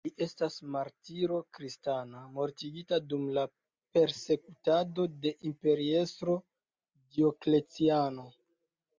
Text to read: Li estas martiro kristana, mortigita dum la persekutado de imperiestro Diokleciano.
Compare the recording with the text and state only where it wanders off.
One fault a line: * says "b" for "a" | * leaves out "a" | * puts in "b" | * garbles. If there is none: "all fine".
all fine